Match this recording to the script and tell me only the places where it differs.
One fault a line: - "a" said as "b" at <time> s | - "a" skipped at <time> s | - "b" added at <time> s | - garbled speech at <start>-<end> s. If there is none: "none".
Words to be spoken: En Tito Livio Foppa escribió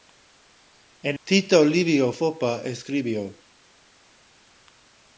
none